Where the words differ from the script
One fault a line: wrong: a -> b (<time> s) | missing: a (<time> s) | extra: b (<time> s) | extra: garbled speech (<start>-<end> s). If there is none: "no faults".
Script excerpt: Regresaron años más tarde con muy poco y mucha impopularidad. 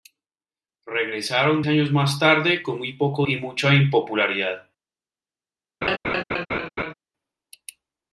no faults